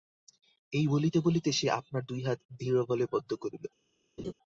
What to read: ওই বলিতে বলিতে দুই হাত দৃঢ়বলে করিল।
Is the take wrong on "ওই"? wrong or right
wrong